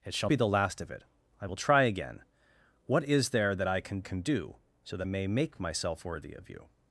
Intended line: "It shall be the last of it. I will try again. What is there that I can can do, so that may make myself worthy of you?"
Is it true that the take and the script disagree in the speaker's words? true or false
false